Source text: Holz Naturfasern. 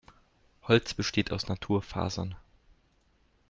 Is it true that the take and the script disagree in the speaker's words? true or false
true